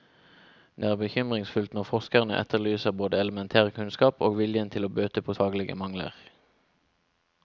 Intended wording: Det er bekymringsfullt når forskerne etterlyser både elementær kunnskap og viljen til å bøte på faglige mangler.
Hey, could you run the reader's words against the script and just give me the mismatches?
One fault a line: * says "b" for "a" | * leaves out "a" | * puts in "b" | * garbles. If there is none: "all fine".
all fine